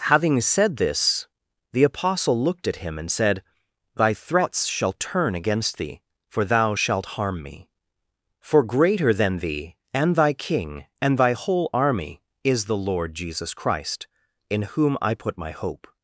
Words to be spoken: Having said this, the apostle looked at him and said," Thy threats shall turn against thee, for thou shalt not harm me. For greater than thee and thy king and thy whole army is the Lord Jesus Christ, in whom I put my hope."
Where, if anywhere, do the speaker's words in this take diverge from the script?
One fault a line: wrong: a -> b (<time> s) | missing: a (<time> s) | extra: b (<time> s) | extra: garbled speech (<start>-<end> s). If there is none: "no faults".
missing: not (7.2 s)